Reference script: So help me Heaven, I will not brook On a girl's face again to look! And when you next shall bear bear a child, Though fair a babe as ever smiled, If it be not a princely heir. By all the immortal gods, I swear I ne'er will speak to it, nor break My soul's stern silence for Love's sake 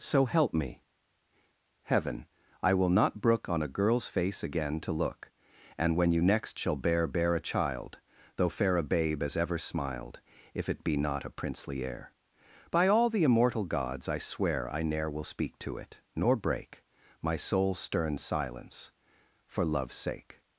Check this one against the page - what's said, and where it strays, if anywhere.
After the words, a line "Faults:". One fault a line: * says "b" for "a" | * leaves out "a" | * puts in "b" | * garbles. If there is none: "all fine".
So help me Heaven, I will not brook On a girl's face again to look! And when you next shall bear bear a child, Though fair a babe as ever smiled, If it be not a princely heir. By all the immortal gods, I swear I ne'er will speak to it, nor break My soul's stern silence for Love's sake
Faults:
all fine